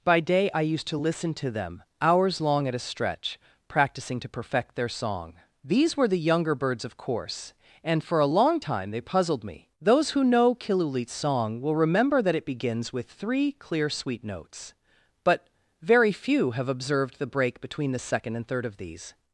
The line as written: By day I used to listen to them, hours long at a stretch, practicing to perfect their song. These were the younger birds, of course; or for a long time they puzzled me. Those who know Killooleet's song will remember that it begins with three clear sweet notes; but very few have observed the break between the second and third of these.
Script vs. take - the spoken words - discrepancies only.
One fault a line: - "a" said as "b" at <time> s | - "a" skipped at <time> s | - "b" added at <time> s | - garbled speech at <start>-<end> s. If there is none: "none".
- "or" said as "and" at 7.8 s